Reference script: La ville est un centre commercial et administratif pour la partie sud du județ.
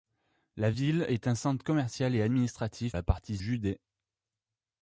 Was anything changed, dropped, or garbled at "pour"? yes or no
yes